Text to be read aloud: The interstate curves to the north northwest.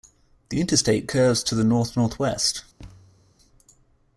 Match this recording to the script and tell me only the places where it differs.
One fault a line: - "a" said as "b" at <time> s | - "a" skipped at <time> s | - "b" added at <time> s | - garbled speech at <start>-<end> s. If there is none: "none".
none